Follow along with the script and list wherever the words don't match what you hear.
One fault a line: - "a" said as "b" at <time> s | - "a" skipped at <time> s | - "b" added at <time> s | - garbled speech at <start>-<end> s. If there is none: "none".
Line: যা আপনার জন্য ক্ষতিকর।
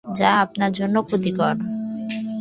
none